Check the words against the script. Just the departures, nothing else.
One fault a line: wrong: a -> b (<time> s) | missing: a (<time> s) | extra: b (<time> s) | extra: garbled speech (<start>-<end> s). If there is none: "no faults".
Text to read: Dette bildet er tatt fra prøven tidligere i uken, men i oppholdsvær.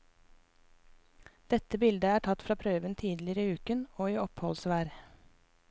wrong: men -> og (4.0 s)